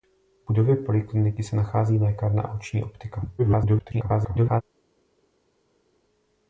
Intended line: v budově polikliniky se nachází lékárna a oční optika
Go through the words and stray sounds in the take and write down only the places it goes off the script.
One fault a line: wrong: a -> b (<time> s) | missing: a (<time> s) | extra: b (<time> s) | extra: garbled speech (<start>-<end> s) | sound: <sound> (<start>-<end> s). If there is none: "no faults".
extra: garbled speech (3.4-4.6 s)